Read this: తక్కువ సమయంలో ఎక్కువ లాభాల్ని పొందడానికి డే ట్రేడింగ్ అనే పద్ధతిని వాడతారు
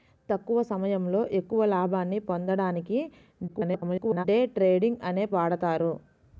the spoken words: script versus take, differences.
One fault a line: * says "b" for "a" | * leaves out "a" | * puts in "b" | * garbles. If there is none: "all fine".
* garbles
* leaves out "పద్ధతిని"